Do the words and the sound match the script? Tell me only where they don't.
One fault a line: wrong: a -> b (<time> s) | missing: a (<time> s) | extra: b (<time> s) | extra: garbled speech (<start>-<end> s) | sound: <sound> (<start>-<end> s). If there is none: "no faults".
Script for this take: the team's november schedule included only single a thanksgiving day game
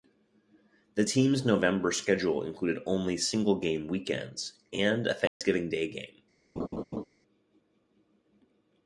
extra: game weekends and (3.6 s)
sound: dropout (5.3-5.4 s)
sound: laugh (6.6-7.0 s)